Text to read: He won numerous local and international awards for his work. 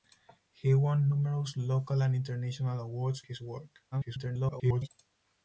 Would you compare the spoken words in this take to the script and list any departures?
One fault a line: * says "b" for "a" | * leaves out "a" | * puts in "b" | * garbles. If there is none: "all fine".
* leaves out "for"
* garbles